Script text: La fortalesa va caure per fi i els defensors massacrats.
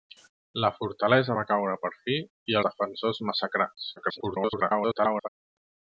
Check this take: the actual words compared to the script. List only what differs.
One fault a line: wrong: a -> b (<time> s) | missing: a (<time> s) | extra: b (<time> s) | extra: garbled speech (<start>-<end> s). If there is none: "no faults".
missing: els (2.6 s)
extra: garbled speech (4.0-5.3 s)